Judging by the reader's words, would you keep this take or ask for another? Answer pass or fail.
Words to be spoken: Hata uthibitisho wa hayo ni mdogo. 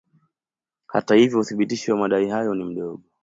fail